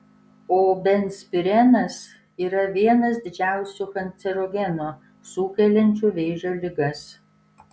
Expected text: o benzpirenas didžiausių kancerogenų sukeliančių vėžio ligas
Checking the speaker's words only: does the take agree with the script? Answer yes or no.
no